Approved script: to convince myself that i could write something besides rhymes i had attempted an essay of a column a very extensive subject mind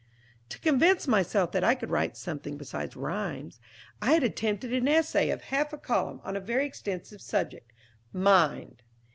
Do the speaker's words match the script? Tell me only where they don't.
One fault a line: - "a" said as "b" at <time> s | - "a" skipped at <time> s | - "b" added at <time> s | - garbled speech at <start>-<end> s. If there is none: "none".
- "half" added at 5.4 s
- "on" added at 6.2 s